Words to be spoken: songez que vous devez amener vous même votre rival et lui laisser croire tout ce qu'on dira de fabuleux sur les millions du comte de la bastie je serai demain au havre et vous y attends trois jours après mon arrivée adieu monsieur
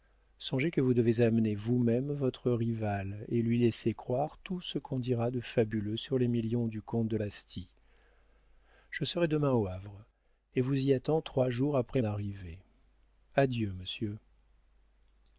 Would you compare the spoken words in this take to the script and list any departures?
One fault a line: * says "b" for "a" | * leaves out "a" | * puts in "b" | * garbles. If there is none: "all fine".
* leaves out "la"
* leaves out "mon"